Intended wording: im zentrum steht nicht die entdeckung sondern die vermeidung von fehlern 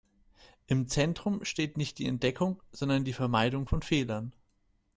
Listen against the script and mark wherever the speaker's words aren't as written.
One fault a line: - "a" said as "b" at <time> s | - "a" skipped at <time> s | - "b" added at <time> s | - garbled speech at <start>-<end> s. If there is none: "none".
none